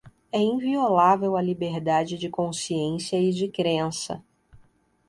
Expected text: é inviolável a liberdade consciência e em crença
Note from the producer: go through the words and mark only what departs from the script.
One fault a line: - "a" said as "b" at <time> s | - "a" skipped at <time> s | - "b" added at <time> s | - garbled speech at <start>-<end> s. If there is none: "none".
- "de" added at 2.1 s
- "em" said as "de" at 3.3 s